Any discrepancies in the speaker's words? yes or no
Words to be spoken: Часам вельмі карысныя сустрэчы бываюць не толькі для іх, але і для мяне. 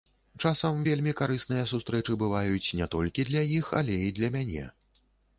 no